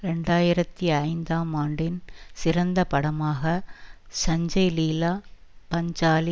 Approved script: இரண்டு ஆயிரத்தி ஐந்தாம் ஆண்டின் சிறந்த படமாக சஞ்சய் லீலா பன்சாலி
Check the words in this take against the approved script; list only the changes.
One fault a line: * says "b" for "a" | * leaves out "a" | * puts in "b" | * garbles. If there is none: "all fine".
all fine